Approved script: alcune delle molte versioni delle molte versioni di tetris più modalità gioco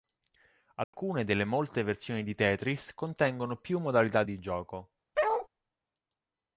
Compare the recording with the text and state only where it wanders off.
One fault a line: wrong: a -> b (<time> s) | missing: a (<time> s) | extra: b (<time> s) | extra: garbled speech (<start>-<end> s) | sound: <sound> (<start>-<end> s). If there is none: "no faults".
sound: dropout (0.8-0.9 s)
missing: delle molte versioni (2.2 s)
extra: contengono (3.0 s)
extra: di (4.2 s)
sound: bark (5.1-5.5 s)